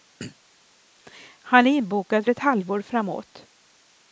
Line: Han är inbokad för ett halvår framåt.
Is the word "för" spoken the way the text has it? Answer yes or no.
no